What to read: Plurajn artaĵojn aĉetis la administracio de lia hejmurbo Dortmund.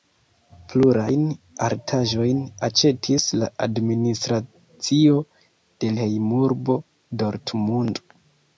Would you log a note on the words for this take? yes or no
yes